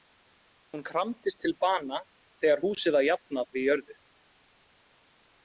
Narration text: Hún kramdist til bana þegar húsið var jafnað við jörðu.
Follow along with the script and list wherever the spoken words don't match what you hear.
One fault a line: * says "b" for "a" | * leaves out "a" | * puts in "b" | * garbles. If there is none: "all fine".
all fine